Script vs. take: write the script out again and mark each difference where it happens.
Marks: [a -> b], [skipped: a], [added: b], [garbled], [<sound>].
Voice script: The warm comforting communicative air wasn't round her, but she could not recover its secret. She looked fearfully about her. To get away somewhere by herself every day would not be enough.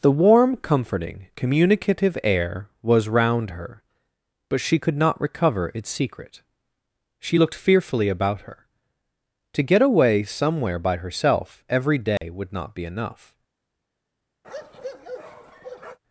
The warm comforting communicative air [wasn't -> was] round her, but she could not recover its secret. She looked fearfully about her. To get away somewhere by herself every day [dropout] would not be enough. [bark]